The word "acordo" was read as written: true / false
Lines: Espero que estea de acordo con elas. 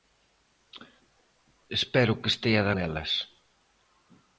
false